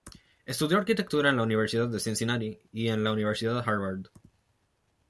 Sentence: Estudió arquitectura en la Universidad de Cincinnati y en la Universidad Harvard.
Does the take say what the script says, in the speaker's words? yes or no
yes